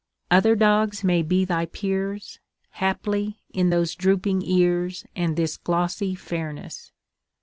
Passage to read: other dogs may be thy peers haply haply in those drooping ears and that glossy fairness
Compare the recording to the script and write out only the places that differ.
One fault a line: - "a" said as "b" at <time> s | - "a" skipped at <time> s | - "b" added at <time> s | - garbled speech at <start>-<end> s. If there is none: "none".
- "haply" skipped at 3.4 s
- "that" said as "this" at 5.3 s